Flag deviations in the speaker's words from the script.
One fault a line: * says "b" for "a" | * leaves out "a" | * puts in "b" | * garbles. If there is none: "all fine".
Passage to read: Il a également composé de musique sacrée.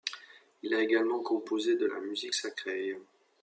* puts in "la"